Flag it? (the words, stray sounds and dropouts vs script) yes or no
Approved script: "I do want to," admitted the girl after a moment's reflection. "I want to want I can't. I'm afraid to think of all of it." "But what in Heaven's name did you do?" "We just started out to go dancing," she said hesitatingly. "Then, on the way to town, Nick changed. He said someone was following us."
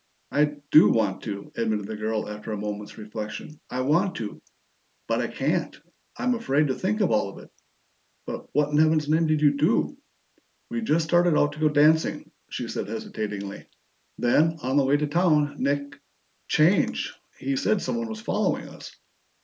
yes